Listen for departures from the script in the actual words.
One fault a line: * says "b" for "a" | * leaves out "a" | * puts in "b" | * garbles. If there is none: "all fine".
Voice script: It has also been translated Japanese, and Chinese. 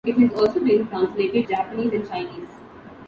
all fine